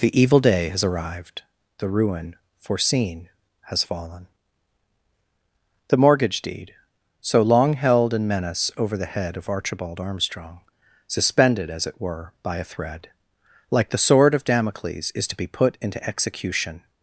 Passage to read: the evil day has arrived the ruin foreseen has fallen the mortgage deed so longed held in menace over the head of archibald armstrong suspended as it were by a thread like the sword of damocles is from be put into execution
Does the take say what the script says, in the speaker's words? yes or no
no